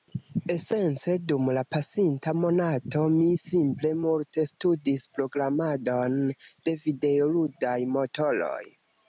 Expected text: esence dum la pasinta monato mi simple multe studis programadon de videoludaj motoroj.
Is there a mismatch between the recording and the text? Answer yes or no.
no